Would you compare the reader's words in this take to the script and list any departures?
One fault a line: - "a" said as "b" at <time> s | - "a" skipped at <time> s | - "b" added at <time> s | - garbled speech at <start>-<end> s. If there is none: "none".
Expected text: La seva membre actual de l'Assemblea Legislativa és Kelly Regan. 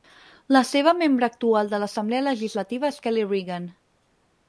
none